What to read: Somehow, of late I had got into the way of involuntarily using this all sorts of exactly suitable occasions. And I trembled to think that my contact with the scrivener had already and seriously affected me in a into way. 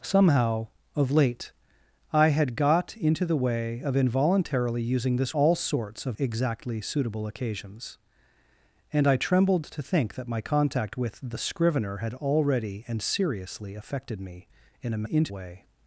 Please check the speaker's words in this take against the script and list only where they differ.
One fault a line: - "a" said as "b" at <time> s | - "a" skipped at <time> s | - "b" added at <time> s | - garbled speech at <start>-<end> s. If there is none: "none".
none